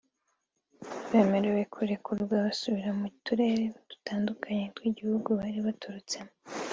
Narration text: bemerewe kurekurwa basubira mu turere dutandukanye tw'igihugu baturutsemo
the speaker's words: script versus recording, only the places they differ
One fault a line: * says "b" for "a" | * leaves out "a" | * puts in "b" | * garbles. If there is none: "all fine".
* puts in "bari"